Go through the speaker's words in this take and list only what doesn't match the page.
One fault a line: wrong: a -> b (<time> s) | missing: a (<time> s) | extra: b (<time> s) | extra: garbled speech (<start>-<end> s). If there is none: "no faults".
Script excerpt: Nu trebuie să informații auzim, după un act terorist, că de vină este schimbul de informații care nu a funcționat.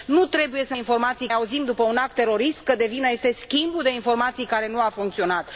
no faults